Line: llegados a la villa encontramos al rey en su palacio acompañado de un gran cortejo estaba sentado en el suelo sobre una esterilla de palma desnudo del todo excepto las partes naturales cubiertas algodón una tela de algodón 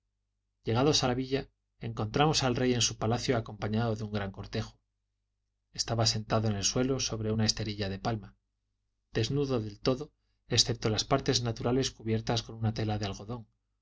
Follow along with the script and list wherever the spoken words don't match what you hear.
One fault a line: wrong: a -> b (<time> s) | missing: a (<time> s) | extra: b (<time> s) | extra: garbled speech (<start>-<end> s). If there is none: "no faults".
wrong: algodón -> con (12.4 s)